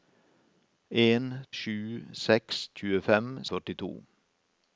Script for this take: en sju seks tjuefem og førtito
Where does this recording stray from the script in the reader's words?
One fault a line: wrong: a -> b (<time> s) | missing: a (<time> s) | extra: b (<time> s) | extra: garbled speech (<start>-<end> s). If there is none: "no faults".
no faults